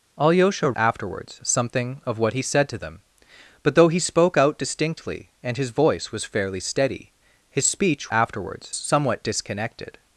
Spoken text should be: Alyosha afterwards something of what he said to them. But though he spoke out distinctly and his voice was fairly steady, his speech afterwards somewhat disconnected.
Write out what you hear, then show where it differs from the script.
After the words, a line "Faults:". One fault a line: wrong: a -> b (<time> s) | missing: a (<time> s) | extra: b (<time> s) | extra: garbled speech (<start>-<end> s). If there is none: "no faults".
Alyosha afterwards something of what he said to them. But though he spoke out distinctly and his voice was fairly steady, his speech afterwards somewhat disconnected.
Faults:
no faults